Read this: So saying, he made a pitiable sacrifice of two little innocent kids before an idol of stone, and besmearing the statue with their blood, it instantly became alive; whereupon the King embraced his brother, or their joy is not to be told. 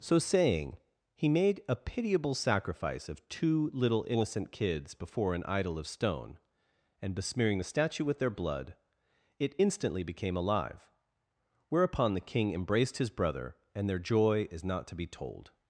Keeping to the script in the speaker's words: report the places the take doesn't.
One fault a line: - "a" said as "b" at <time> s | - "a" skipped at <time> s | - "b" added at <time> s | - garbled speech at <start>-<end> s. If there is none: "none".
- "or" said as "and" at 13.7 s